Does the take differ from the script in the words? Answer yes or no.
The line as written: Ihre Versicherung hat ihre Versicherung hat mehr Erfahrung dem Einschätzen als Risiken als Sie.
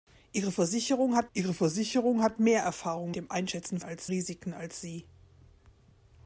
no